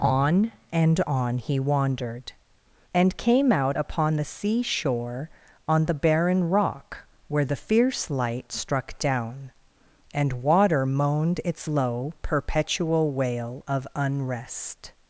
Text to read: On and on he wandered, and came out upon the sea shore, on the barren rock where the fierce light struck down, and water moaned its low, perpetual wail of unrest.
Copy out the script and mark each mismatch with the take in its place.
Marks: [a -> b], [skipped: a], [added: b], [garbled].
On and on he wandered, and came out upon the sea shore, on the barren rock where the fierce light struck down, and water moaned its low, perpetual wail of unrest.